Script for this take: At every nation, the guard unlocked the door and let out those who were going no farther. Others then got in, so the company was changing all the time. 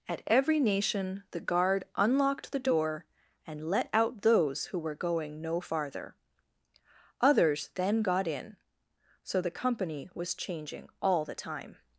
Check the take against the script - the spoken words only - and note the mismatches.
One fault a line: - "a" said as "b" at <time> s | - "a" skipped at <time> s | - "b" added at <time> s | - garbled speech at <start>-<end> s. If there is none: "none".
none